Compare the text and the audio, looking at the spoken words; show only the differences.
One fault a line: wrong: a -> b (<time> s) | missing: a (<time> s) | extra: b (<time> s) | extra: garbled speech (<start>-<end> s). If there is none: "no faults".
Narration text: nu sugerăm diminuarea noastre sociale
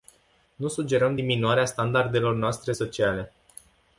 extra: standardelor (1.6 s)